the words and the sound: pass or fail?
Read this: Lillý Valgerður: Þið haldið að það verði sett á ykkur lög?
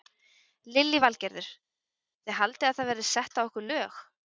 pass